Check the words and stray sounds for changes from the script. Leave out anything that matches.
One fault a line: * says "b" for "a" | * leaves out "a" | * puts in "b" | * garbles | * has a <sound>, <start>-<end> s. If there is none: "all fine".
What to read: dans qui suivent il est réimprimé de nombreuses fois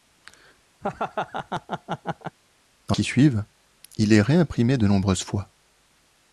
* has a laugh, 0.8-2.4 s